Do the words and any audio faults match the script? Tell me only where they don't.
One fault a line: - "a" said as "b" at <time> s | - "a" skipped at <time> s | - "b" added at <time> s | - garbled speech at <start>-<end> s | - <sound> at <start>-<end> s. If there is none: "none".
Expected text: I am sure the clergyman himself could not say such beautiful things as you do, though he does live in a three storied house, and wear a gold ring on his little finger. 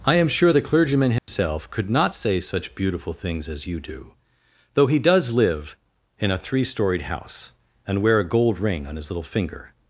- dropout at 1.2-1.3 s